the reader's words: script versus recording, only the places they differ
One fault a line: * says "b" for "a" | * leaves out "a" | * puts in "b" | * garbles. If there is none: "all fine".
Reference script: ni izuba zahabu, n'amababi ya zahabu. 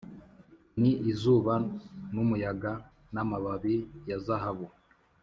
* says "n'umuyaga" for "zahabu"